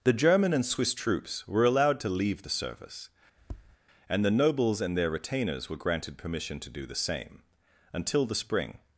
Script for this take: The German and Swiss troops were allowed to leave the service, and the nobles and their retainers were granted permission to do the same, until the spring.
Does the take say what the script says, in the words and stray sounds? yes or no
no